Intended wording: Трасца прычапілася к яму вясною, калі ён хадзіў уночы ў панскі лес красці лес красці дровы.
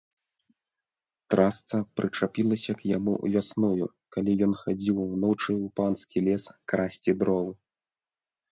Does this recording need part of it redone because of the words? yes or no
yes